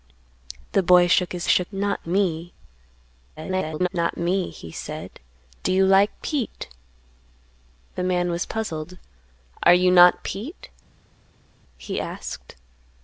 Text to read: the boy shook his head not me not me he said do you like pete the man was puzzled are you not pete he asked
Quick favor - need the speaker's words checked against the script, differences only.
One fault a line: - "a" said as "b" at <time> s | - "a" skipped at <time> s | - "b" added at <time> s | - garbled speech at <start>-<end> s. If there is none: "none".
- "head" said as "shook" at 1.4 s
- garbled speech at 3.4-3.9 s